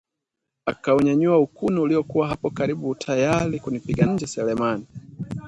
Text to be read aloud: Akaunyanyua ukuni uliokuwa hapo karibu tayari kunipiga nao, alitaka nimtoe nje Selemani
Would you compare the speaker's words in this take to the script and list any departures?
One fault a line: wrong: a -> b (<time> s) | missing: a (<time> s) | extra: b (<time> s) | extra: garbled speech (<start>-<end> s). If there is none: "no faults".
missing: nao alitaka nimtoe (4.0 s)